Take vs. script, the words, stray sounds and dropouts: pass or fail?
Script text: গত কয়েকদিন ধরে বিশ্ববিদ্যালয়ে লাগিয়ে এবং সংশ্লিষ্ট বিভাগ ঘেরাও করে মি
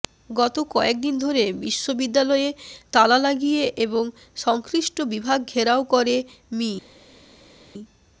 fail